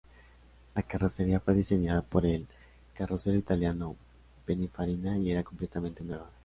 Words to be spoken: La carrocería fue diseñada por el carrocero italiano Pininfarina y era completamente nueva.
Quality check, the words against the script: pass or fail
pass